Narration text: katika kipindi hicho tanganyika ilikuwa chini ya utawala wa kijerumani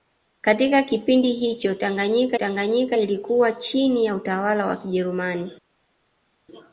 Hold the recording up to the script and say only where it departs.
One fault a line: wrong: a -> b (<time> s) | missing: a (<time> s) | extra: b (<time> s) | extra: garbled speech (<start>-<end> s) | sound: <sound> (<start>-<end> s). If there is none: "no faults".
extra: tanganyika (2.3 s)